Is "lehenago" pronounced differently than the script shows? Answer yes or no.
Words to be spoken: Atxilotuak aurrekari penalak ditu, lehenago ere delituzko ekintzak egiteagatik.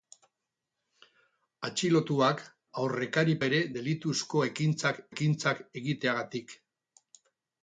yes